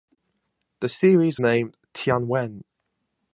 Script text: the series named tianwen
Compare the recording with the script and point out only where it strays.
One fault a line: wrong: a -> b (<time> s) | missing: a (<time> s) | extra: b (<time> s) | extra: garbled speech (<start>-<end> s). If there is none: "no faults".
no faults